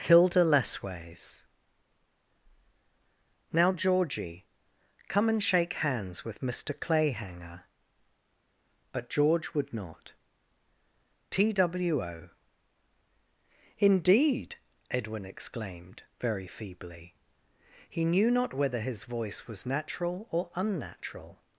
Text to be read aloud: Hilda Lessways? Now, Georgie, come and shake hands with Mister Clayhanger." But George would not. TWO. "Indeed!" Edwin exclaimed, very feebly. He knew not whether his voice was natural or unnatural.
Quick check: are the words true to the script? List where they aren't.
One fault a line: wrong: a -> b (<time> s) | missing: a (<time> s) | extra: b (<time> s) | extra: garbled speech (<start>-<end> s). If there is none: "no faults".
no faults